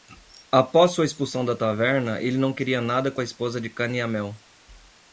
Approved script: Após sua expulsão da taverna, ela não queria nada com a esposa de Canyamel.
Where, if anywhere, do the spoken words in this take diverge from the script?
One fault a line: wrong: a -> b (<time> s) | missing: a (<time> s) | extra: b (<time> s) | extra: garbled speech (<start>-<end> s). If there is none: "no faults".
wrong: ela -> ele (2.2 s)